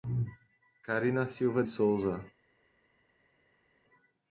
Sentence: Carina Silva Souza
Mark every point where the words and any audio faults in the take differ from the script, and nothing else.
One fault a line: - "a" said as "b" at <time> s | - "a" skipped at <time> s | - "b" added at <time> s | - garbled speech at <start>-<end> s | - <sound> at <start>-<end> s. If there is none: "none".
none